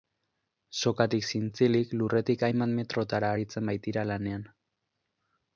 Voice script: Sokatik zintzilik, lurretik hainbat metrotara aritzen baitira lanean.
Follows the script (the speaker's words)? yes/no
yes